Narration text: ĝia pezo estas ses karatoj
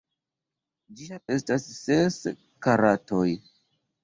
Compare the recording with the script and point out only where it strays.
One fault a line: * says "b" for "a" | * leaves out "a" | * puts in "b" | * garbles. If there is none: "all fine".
* leaves out "pezo"